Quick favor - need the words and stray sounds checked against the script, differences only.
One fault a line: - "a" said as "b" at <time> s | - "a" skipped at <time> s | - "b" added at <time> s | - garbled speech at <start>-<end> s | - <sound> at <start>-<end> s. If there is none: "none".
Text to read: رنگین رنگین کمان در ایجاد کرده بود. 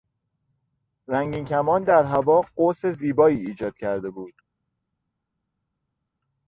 - "رنگین" skipped at 1.4 s
- "هوا قوس زیبایی" added at 2.0 s